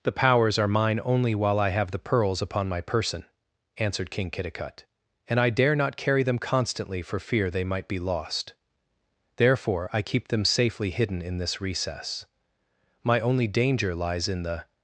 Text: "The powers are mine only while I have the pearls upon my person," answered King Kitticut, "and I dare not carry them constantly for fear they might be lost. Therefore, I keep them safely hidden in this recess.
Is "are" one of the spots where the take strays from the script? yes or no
no